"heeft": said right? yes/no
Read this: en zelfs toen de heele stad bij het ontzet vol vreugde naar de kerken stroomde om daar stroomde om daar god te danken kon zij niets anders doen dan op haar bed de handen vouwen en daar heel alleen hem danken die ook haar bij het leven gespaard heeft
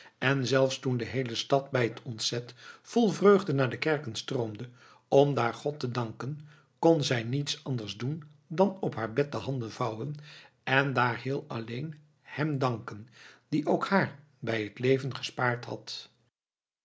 no